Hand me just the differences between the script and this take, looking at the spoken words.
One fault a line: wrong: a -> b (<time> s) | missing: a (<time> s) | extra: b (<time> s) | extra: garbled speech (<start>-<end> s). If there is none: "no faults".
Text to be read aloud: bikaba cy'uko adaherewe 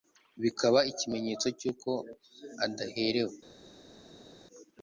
extra: ikimenyetso (0.9 s)